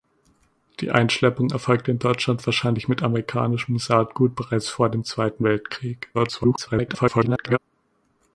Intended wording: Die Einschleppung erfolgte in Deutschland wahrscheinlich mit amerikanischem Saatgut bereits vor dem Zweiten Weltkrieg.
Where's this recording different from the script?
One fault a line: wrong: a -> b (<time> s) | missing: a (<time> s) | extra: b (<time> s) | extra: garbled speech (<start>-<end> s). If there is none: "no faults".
extra: garbled speech (6.1-7.6 s)